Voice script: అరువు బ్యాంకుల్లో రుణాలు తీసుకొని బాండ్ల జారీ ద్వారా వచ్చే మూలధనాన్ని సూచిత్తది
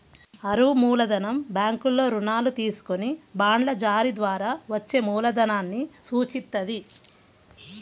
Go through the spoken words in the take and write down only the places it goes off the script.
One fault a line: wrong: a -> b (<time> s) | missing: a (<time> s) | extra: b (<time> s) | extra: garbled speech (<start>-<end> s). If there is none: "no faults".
extra: మూలధనం (0.7 s)